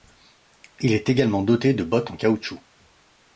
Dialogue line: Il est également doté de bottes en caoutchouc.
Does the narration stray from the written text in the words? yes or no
no